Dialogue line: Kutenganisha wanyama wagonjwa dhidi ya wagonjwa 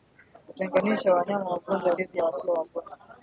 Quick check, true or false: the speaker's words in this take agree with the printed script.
false